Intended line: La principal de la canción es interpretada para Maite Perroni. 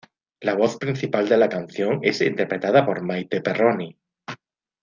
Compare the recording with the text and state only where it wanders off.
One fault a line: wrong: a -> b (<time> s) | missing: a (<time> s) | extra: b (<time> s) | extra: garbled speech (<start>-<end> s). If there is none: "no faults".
extra: voz (0.6 s)
wrong: para -> por (2.8 s)